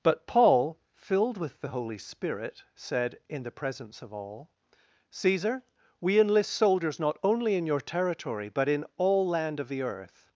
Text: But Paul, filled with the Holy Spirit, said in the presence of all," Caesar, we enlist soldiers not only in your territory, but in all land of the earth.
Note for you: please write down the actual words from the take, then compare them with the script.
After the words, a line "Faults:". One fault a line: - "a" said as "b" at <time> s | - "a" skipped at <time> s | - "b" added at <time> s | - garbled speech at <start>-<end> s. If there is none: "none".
But Paul, filled with the Holy Spirit, said in the presence of all," Caesar, we enlist soldiers not only in your territory, but in all land of the earth.
Faults:
none